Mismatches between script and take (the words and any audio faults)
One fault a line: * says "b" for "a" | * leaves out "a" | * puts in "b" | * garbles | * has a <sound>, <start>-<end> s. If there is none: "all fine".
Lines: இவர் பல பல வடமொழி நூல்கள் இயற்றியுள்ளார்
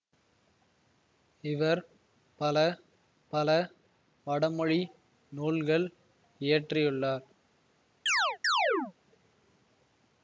* has a chirp, 8.1-8.9 s